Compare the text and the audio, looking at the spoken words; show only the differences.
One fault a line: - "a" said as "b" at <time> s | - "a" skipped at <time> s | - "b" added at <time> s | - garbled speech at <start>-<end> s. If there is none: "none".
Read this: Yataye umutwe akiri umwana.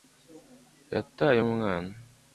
- "umutwe akiri" skipped at 1.4 s